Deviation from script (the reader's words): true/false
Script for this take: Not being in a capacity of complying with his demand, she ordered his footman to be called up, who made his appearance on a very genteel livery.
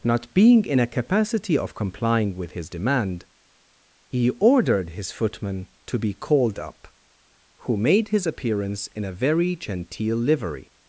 true